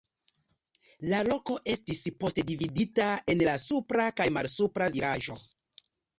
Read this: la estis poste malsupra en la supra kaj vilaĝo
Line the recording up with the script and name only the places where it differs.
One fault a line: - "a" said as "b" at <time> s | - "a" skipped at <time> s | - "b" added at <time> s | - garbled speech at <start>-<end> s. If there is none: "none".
- "loko" added at 1.3 s
- "malsupra" said as "dividita" at 2.5 s
- "malsupra" added at 4.4 s